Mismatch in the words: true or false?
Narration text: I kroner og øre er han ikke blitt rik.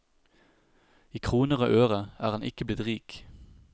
false